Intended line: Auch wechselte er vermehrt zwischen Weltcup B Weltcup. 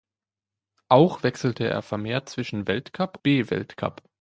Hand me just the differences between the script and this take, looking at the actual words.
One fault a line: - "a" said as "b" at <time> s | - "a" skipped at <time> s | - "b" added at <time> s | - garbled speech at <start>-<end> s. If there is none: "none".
none